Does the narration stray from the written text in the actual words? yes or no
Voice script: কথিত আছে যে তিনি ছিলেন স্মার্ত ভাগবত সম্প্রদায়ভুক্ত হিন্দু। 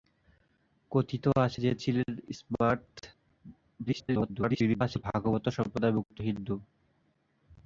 yes